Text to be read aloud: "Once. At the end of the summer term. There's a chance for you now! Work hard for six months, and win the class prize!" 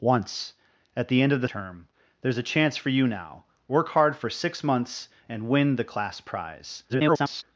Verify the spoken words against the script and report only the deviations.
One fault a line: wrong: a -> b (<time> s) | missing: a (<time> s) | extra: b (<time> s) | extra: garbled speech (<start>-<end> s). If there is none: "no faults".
missing: summer (1.5 s)
extra: garbled speech (6.9-7.4 s)